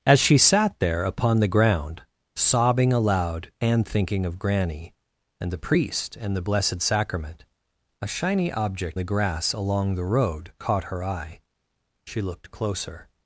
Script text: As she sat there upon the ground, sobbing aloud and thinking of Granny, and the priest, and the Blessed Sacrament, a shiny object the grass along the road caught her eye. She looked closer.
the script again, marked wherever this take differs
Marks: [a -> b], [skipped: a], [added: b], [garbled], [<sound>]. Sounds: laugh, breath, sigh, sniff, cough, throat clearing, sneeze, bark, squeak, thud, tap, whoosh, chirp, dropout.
As she sat there upon the ground, sobbing aloud and thinking of Granny, and the priest, and the Blessed Sacrament, a shiny object the grass along the road caught her eye. She looked closer.